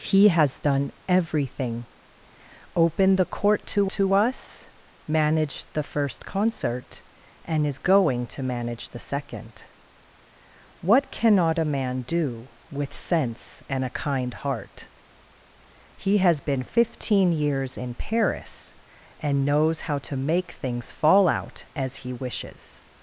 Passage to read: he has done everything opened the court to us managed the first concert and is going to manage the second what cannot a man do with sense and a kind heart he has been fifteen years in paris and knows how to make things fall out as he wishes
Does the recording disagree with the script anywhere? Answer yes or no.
yes